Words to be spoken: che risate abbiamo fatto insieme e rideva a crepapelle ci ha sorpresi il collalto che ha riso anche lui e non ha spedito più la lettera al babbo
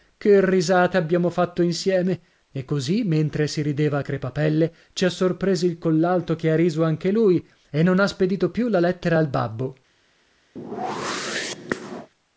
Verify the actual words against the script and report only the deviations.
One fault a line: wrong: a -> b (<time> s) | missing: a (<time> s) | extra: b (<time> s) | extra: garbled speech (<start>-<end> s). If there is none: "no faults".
extra: così mentre si (2.6 s)